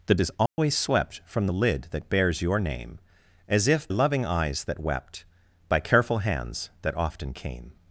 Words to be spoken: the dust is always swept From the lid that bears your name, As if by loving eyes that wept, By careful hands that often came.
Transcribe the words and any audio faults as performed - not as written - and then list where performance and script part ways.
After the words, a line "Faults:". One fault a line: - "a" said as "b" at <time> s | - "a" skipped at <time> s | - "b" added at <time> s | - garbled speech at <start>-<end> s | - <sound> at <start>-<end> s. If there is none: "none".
the is always swept From the lid that bears your name, As if loving eyes that wept, By careful hands that often came.
Faults:
- "dust" skipped at 0.1 s
- dropout at 0.5-0.6 s
- "by" skipped at 3.9 s